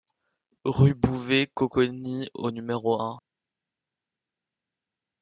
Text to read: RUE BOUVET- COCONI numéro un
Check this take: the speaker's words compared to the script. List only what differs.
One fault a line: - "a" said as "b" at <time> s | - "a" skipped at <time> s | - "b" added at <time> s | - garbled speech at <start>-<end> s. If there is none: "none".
- "au" added at 2.3 s